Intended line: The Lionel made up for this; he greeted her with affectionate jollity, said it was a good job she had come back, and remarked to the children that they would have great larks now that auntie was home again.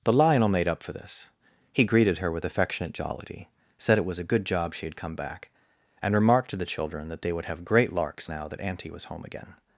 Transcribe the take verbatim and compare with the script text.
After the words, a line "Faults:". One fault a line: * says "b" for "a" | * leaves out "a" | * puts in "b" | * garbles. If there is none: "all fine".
The Lionel made up for this; he greeted her with affectionate jollity, said it was a good job she had come back, and remarked to the children that they would have great larks now that auntie was home again.
Faults:
all fine